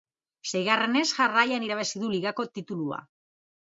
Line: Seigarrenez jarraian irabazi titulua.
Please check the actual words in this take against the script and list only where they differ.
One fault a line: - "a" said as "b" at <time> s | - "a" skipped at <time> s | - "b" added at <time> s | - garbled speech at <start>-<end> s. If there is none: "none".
- "du ligako" added at 2.1 s